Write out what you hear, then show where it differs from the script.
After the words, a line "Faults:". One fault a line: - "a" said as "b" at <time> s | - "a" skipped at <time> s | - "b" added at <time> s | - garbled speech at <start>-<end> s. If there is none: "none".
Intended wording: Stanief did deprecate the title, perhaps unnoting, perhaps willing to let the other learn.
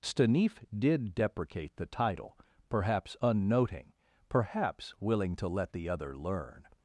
Stanief did deprecate the title, perhaps unnoting, perhaps willing to let the other learn.
Faults:
none